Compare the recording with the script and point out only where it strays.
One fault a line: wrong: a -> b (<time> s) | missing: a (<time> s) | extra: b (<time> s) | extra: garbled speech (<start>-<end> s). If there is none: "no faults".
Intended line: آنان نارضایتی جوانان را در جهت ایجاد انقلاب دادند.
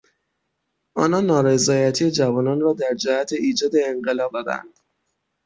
no faults